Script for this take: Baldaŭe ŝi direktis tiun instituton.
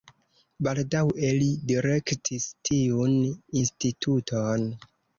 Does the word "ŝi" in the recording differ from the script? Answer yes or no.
yes